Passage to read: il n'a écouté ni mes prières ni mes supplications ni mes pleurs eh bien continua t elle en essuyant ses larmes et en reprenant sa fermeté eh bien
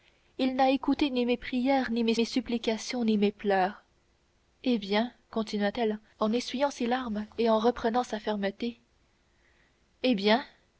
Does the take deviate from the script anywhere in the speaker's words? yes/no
yes